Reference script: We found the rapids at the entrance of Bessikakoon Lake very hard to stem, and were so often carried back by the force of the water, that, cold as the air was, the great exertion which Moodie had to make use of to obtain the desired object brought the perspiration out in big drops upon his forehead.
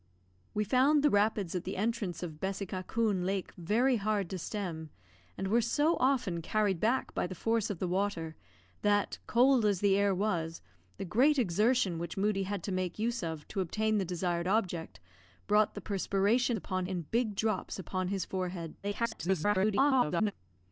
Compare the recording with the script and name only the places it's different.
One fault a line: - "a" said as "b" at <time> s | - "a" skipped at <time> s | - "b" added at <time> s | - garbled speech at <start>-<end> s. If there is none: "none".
- "out" said as "upon" at 16.6 s
- garbled speech at 18.8-20.3 s